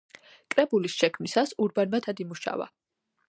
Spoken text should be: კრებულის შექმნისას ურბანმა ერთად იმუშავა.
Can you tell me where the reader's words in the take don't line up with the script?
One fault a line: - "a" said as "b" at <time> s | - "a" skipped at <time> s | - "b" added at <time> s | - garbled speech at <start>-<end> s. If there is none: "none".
none